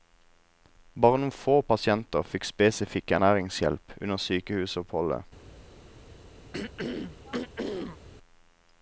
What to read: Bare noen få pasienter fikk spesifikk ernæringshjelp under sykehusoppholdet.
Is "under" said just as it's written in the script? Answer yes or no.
yes